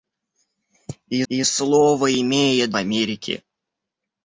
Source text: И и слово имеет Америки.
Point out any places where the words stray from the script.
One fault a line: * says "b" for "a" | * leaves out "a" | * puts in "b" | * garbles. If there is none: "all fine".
all fine